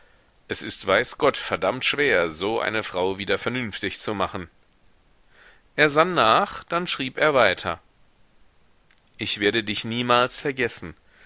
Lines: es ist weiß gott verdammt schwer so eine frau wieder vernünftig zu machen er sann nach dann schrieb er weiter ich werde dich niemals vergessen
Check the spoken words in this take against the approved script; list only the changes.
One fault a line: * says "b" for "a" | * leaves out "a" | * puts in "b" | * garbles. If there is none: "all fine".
all fine